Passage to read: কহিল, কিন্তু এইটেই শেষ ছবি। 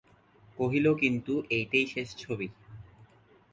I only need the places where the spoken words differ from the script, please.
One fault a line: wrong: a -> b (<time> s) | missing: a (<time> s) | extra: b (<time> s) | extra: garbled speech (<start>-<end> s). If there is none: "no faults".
no faults